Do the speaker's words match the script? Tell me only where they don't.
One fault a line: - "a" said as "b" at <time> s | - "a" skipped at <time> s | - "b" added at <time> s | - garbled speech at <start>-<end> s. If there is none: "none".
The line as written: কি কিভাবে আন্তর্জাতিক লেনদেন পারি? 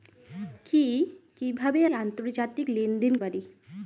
none